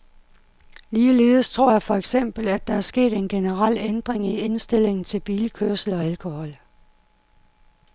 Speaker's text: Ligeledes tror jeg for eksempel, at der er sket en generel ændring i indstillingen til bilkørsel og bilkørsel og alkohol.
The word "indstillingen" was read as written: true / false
true